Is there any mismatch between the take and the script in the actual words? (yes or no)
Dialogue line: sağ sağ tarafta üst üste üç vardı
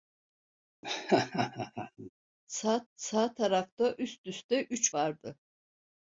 no